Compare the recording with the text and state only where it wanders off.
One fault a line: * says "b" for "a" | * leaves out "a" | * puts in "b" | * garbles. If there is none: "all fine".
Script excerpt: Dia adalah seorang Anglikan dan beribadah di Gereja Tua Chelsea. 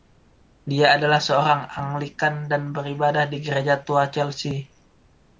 all fine